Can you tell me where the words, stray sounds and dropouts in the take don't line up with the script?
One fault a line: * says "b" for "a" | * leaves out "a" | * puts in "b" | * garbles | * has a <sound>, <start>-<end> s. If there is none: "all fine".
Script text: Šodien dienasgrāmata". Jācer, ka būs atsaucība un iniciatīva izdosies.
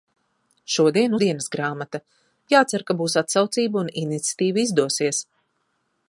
all fine